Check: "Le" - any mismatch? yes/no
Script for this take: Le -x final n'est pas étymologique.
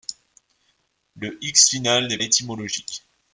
no